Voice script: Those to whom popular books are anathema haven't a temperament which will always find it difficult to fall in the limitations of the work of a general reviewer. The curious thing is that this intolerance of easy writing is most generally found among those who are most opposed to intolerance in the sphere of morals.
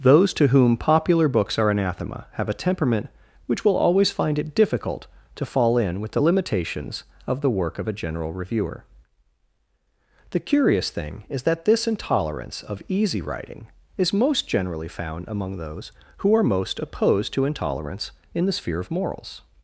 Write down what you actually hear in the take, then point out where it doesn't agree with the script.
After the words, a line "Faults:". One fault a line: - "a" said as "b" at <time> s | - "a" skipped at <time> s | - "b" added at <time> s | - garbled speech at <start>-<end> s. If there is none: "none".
Those to whom popular books are anathema have a temperament which will always find it difficult to fall in with the limitations of the work of a general reviewer. The curious thing is that this intolerance of easy writing is most generally found among those who are most opposed to intolerance in the sphere of morals.
Faults:
- "haven't" said as "have" at 2.3 s
- "with" added at 6.0 s